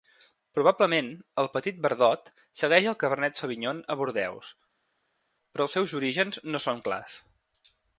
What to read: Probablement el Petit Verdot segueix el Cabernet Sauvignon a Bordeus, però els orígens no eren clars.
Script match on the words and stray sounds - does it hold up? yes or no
no